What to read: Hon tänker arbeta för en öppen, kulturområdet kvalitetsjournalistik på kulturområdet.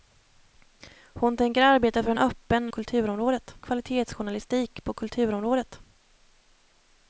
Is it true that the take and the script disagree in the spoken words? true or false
false